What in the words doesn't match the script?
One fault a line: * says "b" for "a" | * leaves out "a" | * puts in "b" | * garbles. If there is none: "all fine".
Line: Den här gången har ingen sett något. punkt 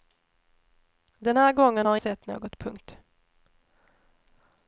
* leaves out "ingen"